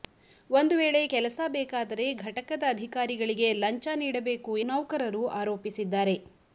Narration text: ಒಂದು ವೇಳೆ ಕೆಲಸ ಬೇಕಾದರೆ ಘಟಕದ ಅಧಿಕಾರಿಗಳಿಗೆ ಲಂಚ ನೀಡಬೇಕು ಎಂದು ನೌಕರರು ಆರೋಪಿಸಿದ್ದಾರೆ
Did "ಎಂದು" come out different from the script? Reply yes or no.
yes